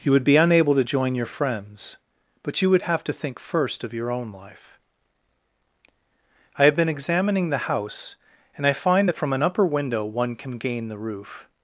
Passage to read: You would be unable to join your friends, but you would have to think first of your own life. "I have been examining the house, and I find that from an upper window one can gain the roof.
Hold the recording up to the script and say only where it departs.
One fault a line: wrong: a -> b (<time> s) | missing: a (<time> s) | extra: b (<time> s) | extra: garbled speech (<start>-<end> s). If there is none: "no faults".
no faults